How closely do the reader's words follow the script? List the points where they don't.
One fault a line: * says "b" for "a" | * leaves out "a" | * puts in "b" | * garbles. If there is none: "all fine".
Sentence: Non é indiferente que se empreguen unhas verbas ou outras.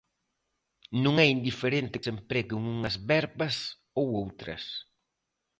* leaves out "que"